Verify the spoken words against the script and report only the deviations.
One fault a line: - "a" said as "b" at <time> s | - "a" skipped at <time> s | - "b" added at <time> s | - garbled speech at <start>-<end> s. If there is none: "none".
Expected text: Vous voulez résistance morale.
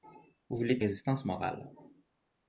none